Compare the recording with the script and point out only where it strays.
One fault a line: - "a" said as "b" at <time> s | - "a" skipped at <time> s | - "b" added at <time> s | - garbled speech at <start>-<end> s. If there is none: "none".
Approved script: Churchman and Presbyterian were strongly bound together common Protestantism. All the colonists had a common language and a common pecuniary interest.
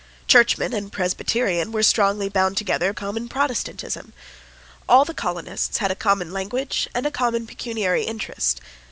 none